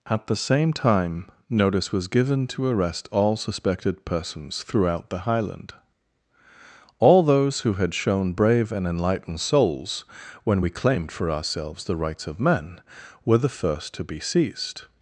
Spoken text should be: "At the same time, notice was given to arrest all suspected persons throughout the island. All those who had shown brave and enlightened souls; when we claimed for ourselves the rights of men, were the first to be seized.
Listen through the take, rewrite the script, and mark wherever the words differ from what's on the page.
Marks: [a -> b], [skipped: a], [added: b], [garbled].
"At the same time, notice was given to arrest all suspected persons throughout the [island. -> highland] All those who had shown brave and enlightened souls; when we claimed for ourselves the rights of men, were the first to be seized.